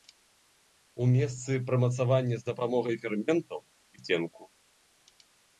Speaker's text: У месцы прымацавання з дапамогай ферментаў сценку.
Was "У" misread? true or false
false